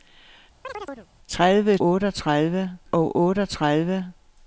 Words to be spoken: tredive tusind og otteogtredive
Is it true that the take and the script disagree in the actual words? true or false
true